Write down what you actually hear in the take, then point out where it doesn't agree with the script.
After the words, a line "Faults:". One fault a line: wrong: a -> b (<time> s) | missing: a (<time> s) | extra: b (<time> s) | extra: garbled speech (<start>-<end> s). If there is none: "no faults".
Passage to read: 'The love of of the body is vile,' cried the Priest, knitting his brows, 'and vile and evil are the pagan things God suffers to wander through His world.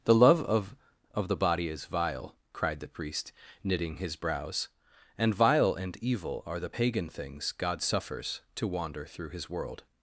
'The love of of the body is vile,' cried the Priest, knitting his brows, 'and vile and evil are the pagan things God suffers to wander through His world.
Faults:
no faults